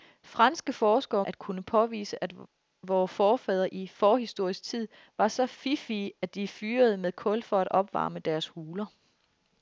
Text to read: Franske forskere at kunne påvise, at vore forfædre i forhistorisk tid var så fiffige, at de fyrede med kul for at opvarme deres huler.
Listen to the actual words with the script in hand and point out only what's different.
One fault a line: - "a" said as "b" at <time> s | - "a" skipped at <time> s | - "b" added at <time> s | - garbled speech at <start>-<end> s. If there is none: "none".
none